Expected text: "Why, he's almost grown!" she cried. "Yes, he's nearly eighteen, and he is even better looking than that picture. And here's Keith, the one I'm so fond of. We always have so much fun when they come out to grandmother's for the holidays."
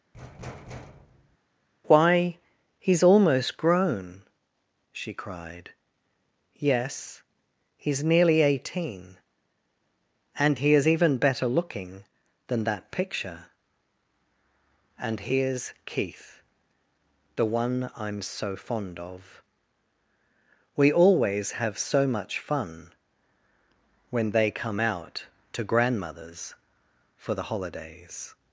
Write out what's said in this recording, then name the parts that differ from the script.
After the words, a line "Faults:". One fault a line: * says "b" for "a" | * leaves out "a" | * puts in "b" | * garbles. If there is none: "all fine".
"Why, he's almost grown!" she cried. "Yes, he's nearly eighteen, and he is even better looking than that picture. And here's Keith, the one I'm so fond of. We always have so much fun when they come out to grandmother's for the holidays."
Faults:
all fine